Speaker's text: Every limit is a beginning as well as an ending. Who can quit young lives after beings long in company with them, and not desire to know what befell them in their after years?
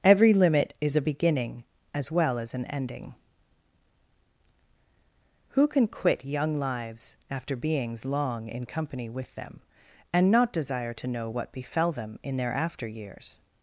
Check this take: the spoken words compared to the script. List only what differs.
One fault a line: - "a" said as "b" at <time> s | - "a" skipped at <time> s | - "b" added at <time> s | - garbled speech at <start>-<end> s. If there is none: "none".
none